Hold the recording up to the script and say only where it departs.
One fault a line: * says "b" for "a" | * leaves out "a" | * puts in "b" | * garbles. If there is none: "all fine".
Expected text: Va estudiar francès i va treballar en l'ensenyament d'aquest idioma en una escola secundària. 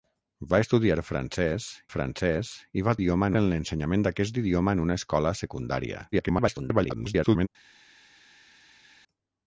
* puts in "francès"
* says "idioma" for "treballar"
* garbles